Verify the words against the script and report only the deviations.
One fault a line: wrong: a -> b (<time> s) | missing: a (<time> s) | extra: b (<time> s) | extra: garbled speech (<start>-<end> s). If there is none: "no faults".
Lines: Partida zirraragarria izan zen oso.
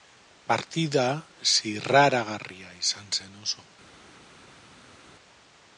no faults